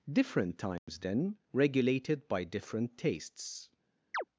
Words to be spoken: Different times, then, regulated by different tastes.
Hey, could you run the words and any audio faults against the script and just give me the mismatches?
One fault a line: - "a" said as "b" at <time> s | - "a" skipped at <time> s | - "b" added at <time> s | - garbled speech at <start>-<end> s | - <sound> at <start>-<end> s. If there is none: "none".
- dropout at 0.8-0.9 s
- chirp at 4.1-4.2 s